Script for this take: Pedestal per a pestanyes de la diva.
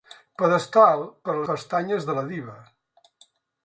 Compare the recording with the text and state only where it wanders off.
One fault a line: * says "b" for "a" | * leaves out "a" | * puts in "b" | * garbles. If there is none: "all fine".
all fine